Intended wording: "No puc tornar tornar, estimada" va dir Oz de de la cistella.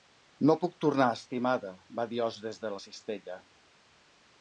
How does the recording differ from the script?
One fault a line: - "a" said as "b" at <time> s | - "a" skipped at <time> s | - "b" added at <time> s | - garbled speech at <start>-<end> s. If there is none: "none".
- "tornar" skipped at 1.1 s
- "de" said as "des" at 2.5 s